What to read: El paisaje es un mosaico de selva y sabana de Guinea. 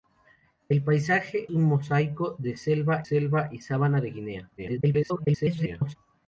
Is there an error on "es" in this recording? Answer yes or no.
yes